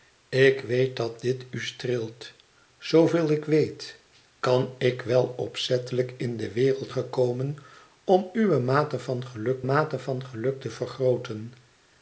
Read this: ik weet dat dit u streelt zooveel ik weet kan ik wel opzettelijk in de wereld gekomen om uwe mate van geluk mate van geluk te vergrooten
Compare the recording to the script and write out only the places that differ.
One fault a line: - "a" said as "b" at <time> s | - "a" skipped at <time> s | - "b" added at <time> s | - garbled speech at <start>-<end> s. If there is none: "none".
none